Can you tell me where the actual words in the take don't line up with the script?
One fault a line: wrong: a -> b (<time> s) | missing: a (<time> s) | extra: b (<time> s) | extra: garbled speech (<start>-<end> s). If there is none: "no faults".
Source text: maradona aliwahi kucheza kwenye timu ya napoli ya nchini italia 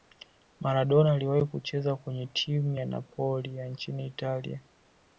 no faults